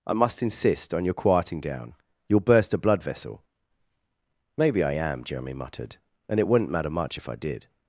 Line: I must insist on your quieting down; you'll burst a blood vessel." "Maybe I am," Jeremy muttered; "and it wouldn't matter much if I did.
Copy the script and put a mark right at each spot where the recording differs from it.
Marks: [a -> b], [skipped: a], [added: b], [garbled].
I must insist on your quieting down; you'll burst a blood vessel." "Maybe I am," Jeremy muttered; "and it wouldn't matter much if I did.